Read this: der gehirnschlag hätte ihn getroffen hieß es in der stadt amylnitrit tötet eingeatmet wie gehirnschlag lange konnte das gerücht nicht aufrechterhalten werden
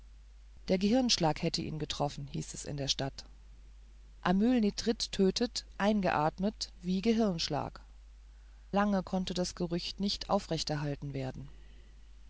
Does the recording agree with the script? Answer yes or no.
yes